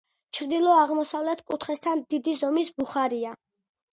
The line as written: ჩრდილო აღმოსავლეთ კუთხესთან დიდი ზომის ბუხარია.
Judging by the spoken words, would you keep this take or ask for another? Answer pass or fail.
pass